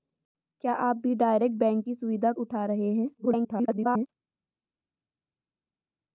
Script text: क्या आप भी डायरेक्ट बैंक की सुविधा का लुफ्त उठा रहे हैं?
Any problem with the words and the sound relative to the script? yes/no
yes